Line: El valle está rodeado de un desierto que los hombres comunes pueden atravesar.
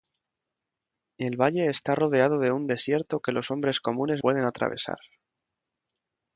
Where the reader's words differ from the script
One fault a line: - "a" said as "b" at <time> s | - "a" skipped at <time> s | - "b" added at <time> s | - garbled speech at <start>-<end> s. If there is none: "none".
none